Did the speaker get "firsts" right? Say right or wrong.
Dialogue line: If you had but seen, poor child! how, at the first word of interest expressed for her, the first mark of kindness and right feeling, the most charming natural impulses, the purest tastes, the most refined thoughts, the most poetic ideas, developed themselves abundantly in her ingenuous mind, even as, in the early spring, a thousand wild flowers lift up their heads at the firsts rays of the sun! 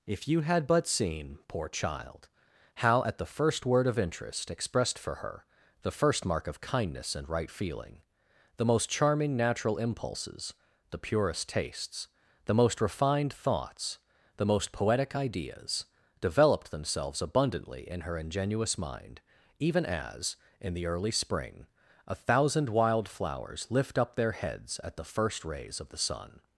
wrong